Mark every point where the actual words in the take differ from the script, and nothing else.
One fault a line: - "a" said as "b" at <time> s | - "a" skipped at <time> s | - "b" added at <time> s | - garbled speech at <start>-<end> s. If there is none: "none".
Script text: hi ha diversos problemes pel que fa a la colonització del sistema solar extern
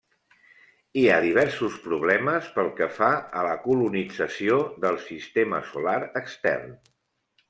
none